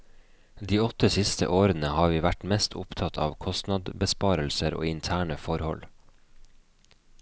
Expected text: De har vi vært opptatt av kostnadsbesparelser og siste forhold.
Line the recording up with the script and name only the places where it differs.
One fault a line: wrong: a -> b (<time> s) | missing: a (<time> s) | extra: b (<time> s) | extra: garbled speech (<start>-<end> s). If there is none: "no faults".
extra: åtte siste årene (0.8 s)
extra: mest (2.5 s)
wrong: siste -> interne (4.9 s)